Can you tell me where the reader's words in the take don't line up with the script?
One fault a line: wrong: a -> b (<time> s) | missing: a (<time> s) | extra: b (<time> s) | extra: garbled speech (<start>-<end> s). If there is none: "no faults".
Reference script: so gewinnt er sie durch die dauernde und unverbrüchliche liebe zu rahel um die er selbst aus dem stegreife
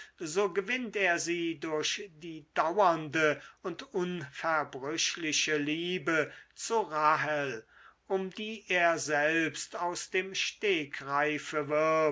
no faults